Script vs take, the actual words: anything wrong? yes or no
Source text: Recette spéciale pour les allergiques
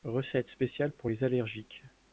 no